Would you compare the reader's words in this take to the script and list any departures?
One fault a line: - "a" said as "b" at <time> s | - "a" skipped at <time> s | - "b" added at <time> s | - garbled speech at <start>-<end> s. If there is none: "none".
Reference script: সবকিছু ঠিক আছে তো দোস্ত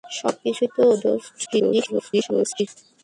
- "ঠিক আছে" skipped at 0.6 s
- garbled speech at 1.5-2.7 s